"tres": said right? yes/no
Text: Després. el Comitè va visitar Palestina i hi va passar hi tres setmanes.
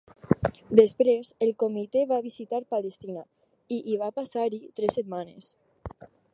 yes